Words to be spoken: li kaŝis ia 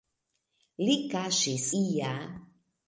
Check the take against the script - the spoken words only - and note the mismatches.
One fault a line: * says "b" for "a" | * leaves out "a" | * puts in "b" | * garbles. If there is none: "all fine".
all fine